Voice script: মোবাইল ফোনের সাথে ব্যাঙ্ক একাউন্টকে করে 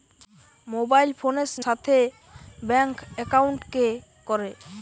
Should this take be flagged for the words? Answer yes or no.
no